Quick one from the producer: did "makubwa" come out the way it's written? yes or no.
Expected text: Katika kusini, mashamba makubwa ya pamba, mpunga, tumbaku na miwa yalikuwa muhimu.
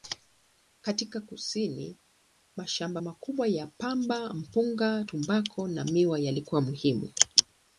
yes